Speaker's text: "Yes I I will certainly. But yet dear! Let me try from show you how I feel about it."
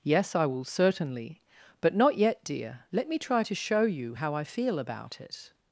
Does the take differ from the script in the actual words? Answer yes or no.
yes